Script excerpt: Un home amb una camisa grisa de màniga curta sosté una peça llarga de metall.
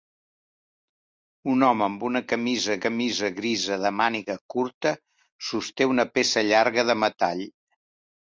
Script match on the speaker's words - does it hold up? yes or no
no